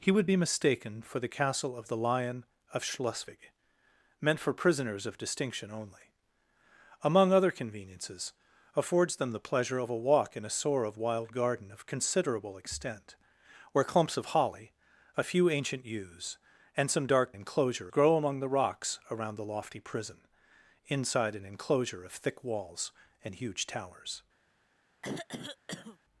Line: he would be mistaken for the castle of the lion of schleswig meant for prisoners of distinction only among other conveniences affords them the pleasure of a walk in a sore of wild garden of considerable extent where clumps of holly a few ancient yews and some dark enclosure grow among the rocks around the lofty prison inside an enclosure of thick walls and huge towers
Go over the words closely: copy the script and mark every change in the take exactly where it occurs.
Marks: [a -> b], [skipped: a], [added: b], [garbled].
he would be mistaken for the castle of the lion of schleswig meant for prisoners of distinction only among other conveniences affords them the pleasure of a walk in a sore of wild garden of considerable extent where clumps of holly a few ancient yews and some dark enclosure grow among the rocks around the lofty prison inside an enclosure of thick walls and huge towers